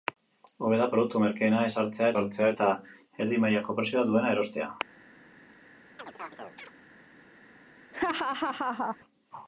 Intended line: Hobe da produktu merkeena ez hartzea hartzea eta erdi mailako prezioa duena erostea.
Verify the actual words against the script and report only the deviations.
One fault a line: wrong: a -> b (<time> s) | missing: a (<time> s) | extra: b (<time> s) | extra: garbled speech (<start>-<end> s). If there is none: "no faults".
no faults